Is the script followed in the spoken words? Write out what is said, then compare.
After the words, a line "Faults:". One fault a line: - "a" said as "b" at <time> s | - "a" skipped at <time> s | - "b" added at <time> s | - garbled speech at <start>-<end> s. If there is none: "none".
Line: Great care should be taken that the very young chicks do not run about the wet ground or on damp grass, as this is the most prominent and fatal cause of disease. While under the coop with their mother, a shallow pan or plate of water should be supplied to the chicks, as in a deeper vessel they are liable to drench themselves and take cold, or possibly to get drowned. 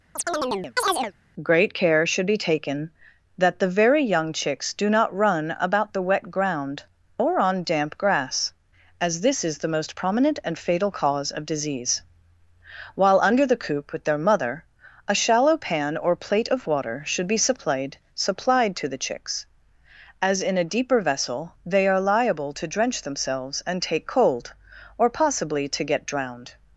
Great care should be taken that the very young chicks do not run about the wet ground or on damp grass, as this is the most prominent and fatal cause of disease. While under the coop with their mother, a shallow pan or plate of water should be supplied supplied to the chicks, as in a deeper vessel they are liable to drench themselves and take cold, or possibly to get drowned.
Faults:
- "supplied" added at 18.1 s